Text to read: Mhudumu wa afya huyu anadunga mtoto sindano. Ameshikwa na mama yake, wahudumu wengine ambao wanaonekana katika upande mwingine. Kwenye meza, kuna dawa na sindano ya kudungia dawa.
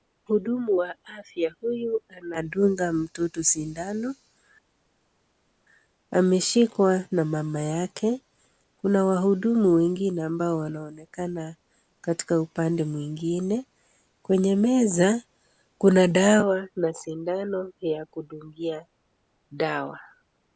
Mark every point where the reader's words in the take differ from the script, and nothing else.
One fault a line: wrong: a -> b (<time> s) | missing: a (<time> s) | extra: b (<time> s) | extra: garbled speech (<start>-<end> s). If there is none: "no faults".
extra: kuna (8.8 s)